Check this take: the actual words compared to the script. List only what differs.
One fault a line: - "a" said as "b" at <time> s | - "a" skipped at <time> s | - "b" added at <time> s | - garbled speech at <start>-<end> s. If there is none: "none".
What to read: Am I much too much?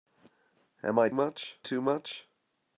none